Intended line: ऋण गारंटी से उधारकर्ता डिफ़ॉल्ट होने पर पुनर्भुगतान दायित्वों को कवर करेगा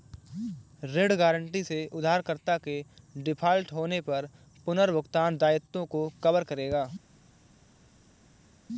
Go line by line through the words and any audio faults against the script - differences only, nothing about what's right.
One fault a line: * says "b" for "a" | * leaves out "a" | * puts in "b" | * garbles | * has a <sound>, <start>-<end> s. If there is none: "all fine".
* puts in "के"